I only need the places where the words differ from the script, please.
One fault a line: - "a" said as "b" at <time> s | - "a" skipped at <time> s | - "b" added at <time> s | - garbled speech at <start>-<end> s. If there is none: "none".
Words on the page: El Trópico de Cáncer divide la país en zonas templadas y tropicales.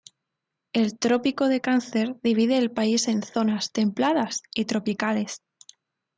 - "la" said as "el" at 2.6 s